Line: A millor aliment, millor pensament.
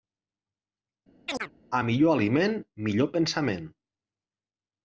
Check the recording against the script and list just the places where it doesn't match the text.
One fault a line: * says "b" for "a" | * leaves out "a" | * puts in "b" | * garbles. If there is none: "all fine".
all fine